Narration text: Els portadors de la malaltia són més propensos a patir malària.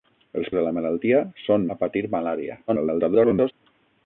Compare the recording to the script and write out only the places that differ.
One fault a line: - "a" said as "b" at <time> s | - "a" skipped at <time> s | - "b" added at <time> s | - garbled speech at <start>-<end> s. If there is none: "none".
- "portadors" skipped at 0.5 s
- "més propensos" skipped at 1.6 s
- garbled speech at 2.7-3.5 s